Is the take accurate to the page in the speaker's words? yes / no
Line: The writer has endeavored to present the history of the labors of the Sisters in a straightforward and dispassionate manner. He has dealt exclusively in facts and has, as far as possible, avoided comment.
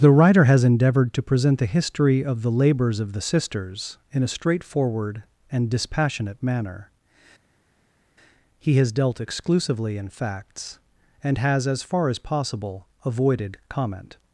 yes